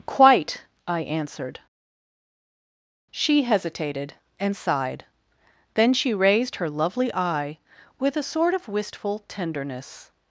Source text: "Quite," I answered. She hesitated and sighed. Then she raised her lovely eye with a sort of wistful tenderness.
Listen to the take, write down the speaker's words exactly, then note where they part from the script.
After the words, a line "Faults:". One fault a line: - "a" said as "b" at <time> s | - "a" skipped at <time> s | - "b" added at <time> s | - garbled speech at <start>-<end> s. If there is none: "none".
"Quite," I answered. She hesitated and sighed. Then she raised her lovely eye with a sort of wistful tenderness.
Faults:
none